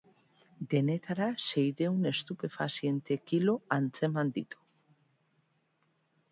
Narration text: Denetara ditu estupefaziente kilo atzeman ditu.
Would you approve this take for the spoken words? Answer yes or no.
no